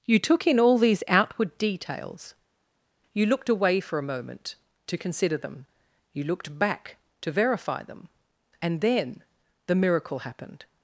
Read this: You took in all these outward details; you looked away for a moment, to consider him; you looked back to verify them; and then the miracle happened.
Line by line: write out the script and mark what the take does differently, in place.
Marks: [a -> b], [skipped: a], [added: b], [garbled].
You took in all these outward details; you looked away for a moment, to consider [him; -> them] you looked back to verify them; and then the miracle happened.